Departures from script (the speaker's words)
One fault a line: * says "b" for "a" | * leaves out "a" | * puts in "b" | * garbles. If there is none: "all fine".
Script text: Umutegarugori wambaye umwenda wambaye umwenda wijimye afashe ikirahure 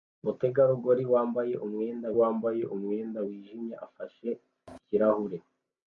all fine